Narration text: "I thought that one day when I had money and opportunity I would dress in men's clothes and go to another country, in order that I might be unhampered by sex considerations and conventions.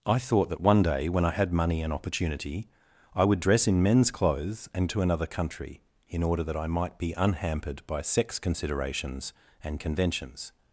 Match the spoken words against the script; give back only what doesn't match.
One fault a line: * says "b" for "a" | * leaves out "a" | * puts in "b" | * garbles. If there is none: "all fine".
* leaves out "go"